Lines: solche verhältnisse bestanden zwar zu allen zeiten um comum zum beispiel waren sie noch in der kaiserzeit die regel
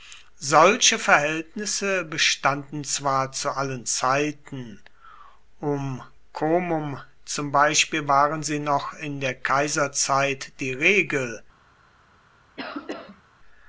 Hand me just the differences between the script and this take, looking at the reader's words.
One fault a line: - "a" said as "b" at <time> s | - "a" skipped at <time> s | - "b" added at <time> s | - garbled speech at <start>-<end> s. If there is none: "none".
none